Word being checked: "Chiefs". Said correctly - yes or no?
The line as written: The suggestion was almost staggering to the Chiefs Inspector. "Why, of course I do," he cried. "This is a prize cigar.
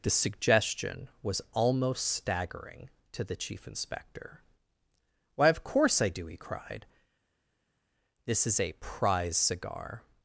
no